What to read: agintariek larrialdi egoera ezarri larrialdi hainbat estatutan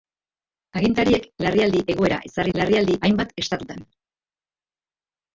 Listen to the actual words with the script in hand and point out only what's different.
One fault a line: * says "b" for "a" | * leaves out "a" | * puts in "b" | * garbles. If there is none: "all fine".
all fine